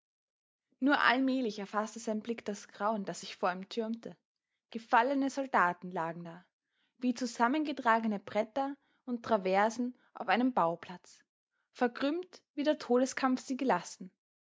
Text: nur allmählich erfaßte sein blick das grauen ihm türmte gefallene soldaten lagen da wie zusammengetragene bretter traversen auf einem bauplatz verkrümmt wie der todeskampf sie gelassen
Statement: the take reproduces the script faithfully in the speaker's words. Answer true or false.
false